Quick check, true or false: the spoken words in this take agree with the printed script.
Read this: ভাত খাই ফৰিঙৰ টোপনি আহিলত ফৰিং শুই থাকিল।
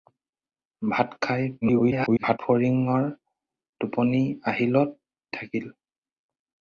false